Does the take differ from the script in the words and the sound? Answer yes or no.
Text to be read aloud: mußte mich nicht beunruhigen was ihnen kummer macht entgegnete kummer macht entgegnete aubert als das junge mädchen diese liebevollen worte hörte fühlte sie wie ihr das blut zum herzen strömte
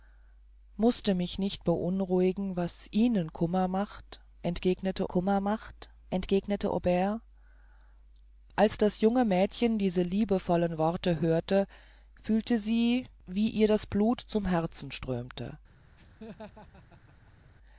yes